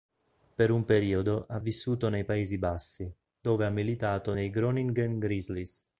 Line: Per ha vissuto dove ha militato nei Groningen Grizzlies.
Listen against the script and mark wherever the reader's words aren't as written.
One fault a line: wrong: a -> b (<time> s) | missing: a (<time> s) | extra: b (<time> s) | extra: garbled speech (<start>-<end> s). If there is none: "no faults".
extra: un periodo (0.7 s)
extra: nei Paesi Bassi (2.1 s)